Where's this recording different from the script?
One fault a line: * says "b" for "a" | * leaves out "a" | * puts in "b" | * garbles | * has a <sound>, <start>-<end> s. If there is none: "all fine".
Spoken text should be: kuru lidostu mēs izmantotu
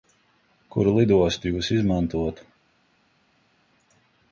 * says "jūs" for "mēs"